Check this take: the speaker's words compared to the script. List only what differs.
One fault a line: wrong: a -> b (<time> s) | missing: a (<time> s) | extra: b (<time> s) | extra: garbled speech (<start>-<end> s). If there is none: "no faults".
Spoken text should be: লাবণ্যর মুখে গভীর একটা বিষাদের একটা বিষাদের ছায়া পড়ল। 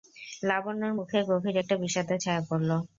missing: একটা বিষাদের (2.2 s)